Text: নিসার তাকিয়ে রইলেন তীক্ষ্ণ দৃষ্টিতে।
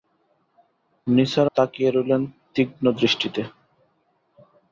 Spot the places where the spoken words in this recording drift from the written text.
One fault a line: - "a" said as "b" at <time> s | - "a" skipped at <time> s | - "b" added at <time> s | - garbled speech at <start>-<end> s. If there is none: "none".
none